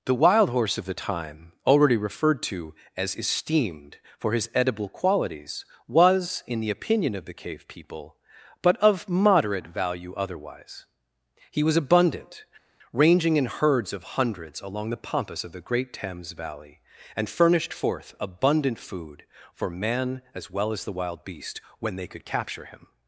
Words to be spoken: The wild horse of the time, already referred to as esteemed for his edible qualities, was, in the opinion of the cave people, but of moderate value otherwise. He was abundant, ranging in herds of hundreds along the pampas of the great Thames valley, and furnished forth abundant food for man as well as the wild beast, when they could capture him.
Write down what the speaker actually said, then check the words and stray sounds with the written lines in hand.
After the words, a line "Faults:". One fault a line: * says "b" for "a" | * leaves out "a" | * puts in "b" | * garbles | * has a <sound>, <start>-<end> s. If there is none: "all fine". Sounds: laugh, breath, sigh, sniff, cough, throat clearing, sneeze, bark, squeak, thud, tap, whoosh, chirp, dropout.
The wild horse of the time, already referred to as esteemed for his edible qualities, was, in the opinion of the cave people, but of moderate value otherwise. He was abundant, ranging in herds of hundreds along the pampas of the great Thames valley, and furnished forth abundant food for man as well as the wild beast, when they could capture him.
Faults:
all fine